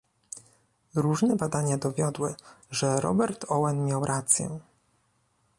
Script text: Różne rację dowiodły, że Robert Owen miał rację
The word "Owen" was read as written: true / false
true